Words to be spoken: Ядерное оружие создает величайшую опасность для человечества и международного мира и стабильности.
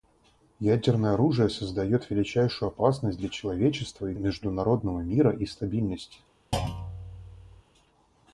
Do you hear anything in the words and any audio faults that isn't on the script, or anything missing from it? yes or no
yes